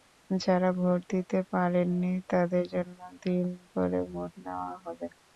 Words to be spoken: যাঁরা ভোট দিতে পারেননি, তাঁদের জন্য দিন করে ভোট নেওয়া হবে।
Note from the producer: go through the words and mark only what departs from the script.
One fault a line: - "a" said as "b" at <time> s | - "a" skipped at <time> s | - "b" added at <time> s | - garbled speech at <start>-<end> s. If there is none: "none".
none